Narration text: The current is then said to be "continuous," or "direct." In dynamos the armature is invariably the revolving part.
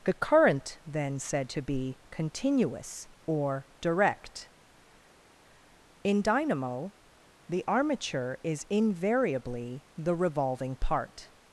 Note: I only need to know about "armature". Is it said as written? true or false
true